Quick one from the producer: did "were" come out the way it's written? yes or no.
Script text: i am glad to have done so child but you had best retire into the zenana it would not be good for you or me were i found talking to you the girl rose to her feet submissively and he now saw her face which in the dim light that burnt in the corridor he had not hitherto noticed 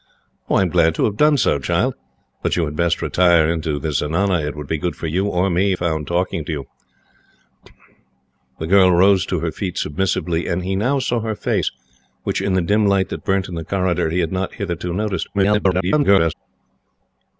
no